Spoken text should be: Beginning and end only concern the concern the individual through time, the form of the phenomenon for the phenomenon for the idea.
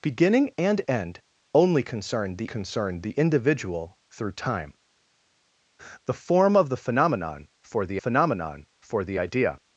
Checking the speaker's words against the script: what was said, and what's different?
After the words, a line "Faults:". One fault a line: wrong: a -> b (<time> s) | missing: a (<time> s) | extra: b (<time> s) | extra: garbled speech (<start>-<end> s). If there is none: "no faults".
Beginning and end only concern the concern the individual through time, the form of the phenomenon for the phenomenon for the idea.
Faults:
no faults